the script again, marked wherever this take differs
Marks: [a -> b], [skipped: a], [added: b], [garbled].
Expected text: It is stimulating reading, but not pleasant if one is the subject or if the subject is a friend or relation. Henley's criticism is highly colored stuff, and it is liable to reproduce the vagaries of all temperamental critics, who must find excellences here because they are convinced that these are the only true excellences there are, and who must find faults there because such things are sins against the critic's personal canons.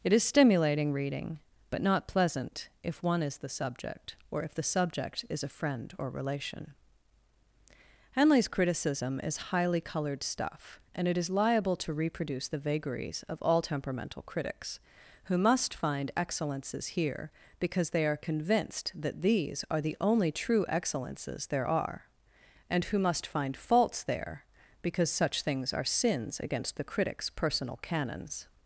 It is stimulating reading, but not pleasant if one is the subject or if the subject is a friend or relation. Henley's criticism is highly colored stuff, and it is liable to reproduce the vagaries of all temperamental critics, who must find excellences here because they are convinced that these are the only true excellences there are, and who must find faults there because such things are sins against the critic's personal canons.